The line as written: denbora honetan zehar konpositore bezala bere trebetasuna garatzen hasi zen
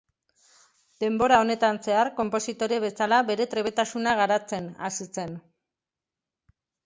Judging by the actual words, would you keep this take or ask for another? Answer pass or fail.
pass